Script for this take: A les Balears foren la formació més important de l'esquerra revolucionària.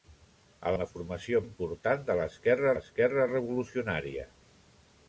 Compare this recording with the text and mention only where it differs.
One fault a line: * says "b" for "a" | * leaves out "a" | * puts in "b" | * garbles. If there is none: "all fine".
* leaves out "les Balears foren"
* leaves out "més"
* puts in "l'esquerra"